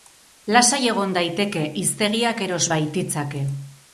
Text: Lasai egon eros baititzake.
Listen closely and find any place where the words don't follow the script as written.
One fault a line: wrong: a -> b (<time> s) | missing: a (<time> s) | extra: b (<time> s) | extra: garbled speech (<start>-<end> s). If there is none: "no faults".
extra: daiteke hiztegiak (1.2 s)